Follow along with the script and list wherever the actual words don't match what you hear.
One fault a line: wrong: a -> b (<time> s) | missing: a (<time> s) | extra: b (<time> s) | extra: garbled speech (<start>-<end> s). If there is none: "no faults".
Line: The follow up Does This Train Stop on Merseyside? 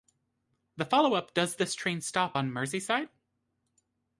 no faults